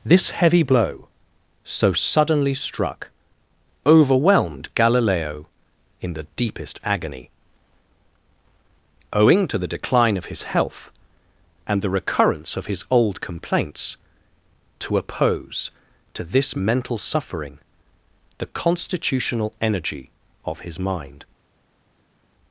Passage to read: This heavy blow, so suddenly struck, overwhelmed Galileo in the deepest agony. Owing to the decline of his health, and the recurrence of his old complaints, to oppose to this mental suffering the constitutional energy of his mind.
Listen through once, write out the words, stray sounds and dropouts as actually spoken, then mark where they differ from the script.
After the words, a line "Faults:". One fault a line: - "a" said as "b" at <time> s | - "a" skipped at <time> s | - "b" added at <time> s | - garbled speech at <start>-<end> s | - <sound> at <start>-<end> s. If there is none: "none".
This heavy blow, so suddenly struck, overwhelmed Galileo in the deepest agony. Owing to the decline of his health, and the recurrence of his old complaints, to oppose to this mental suffering the constitutional energy of his mind.
Faults:
none